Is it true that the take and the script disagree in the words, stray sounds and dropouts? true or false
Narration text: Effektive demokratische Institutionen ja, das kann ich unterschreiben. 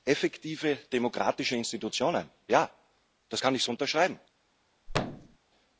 true